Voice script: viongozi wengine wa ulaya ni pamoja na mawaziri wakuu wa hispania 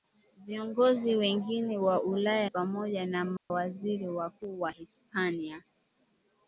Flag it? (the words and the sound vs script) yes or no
yes